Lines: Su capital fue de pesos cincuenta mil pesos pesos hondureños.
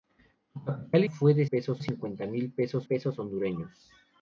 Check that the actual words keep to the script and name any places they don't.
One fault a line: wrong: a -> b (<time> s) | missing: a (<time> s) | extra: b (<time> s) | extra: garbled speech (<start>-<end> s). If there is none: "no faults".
no faults